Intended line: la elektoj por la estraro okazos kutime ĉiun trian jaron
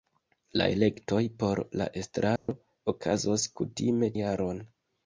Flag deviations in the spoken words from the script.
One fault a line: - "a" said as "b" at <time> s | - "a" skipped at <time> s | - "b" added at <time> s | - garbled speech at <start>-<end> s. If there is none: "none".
- "ĉiun trian" skipped at 4.1 s